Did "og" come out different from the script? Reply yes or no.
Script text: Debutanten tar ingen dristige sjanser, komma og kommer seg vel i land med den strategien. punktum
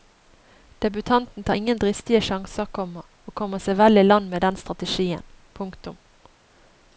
no